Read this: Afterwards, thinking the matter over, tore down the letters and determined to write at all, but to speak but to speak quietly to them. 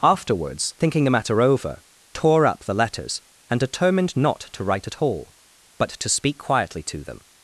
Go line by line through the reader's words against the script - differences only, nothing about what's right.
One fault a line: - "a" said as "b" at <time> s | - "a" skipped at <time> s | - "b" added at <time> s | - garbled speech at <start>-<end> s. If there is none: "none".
- "down" said as "up" at 2.5 s
- "not" added at 4.2 s
- "but to speak" skipped at 6.4 s